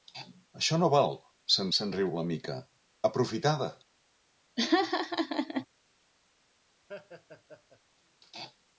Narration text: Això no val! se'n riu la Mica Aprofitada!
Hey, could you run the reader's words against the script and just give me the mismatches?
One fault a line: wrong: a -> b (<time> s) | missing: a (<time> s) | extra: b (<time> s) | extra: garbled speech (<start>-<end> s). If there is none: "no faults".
extra: se'n (1.8 s)